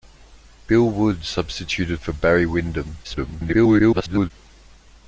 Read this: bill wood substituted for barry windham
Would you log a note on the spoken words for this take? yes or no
yes